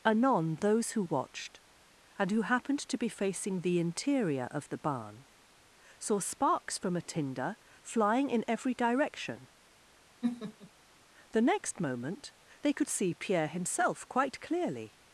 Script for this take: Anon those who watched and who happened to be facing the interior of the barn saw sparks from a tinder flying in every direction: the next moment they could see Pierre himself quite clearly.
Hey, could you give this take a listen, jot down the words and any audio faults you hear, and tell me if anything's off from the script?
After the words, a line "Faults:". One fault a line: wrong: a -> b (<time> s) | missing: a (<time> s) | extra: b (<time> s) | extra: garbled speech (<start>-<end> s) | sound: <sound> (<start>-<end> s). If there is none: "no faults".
Anon those who watched and who happened to be facing the interior of the barn saw sparks from a tinder flying in every direction: the next moment they could see Pierre himself quite clearly.
Faults:
sound: laugh (10.2-10.7 s)